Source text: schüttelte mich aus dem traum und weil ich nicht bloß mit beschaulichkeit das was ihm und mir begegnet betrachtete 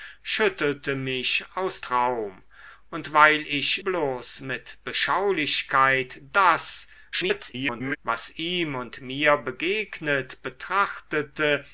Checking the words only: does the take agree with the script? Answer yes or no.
no